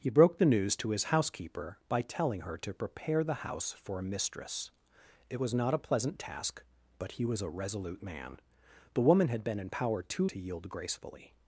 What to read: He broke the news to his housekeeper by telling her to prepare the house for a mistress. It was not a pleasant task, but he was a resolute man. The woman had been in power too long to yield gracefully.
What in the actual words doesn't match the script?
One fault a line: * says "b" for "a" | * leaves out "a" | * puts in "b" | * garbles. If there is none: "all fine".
* leaves out "long"